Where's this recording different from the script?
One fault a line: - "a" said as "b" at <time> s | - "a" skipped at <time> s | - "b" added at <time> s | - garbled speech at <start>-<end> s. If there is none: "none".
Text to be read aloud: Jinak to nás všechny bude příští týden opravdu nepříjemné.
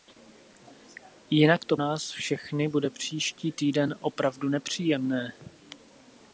none